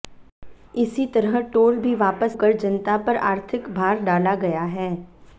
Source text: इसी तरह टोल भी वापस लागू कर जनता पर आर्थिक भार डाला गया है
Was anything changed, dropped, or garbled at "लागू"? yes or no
yes